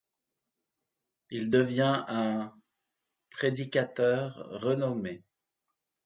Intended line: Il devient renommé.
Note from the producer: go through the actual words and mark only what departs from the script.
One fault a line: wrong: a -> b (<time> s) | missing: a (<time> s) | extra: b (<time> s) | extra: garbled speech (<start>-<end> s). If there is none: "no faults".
extra: un prédicateur (2.1 s)